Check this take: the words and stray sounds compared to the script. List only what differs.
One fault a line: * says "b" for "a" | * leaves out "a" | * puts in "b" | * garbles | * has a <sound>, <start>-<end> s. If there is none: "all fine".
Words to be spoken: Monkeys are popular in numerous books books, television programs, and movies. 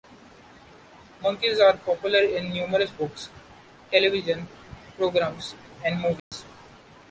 * leaves out "books"
* has a dropout, 6.2-6.3 s